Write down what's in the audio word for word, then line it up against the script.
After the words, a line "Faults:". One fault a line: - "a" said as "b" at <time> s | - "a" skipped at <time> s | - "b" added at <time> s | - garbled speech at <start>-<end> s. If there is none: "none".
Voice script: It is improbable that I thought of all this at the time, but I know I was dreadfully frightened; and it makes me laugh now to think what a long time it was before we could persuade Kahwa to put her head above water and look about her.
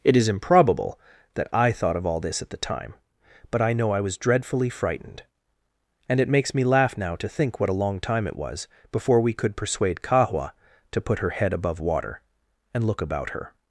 It is improbable that I thought of all this at the time, but I know I was dreadfully frightened; and it makes me laugh now to think what a long time it was before we could persuade Kahwa to put her head above water and look about her.
Faults:
none